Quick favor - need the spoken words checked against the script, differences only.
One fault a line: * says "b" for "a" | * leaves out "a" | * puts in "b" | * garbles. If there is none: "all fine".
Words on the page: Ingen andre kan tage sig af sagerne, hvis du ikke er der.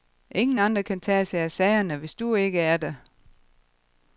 all fine